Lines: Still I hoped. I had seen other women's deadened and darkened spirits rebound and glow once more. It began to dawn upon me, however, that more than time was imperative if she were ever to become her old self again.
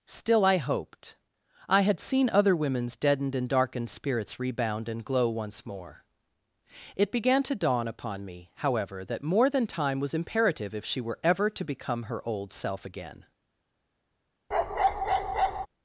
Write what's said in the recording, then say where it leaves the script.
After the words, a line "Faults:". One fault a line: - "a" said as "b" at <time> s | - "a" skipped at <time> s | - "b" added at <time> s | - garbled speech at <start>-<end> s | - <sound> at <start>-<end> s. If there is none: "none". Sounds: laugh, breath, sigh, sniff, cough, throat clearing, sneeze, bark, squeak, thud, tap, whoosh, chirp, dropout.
Still I hoped. I had seen other women's deadened and darkened spirits rebound and glow once more. It began to dawn upon me, however, that more than time was imperative if she were ever to become her old self again.
Faults:
- bark at 14.5-15.7 s